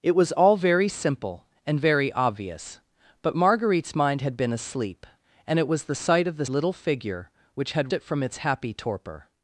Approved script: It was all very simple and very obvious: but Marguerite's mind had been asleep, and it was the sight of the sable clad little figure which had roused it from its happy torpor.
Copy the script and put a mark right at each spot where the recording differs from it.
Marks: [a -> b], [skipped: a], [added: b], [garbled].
It was all very simple and very obvious: but Marguerite's mind had been asleep, and it was the sight of the [skipped: sable clad] little figure which had [skipped: roused] it from its happy torpor.